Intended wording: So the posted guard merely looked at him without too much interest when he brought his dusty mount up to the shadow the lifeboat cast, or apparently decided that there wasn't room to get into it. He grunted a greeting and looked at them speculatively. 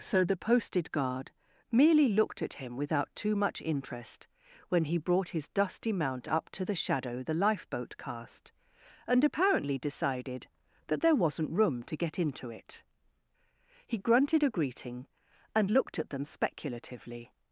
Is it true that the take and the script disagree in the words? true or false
true